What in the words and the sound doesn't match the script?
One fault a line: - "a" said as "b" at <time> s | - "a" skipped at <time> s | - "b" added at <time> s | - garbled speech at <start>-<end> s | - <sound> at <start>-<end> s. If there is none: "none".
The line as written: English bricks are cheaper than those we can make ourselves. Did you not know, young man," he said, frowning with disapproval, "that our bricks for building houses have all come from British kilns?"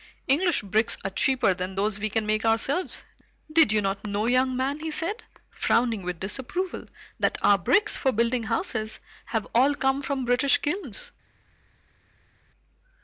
none